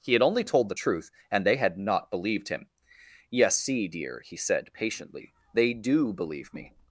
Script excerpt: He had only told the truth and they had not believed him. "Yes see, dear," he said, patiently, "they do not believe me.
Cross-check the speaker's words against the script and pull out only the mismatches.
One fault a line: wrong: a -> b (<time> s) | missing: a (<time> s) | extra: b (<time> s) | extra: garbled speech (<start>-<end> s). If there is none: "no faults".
missing: not (6.1 s)